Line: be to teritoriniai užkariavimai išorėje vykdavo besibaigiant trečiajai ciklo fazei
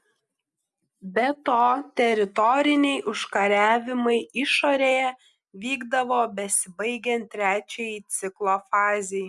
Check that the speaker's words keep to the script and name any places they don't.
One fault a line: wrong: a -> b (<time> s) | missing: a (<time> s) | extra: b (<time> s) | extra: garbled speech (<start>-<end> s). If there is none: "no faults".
no faults